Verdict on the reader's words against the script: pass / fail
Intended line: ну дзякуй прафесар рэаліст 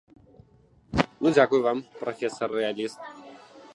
fail